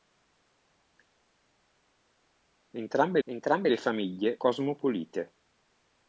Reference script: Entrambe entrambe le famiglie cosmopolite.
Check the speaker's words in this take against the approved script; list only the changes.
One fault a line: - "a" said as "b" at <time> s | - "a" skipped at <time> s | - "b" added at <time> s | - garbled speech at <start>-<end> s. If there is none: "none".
none